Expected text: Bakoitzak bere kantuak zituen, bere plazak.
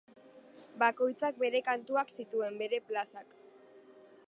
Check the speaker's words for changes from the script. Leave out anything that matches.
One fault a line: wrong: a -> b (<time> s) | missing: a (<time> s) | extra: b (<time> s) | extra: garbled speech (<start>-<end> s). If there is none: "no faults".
no faults